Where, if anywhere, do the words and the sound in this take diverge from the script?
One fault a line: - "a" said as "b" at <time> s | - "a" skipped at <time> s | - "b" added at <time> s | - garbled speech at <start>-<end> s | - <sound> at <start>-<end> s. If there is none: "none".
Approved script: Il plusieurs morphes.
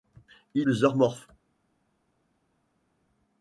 none